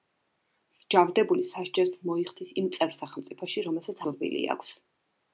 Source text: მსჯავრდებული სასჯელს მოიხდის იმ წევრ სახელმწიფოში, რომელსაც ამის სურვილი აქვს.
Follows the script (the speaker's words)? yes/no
no